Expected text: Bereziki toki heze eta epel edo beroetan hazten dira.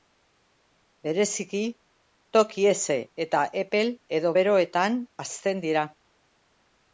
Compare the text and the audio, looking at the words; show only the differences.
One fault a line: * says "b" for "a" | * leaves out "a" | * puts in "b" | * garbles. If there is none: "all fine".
all fine